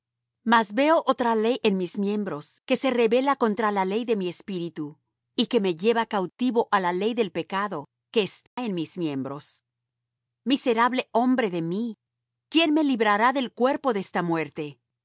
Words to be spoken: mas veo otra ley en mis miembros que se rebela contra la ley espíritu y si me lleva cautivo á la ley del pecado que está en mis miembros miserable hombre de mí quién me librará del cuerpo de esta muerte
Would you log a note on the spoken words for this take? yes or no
yes